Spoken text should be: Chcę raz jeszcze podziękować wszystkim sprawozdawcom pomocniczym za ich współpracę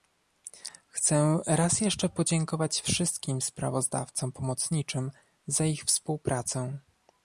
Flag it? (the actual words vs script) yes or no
no